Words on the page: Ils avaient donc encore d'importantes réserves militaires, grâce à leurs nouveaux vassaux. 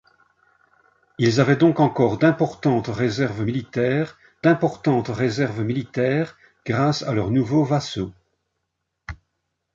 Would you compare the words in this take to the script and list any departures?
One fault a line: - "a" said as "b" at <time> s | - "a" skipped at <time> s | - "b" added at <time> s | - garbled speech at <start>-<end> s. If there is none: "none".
- "d'importantes réserves militaires" added at 4.4 s